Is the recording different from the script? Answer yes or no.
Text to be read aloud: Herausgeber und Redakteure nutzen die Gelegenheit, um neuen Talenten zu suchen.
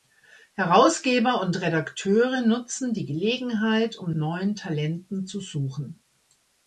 no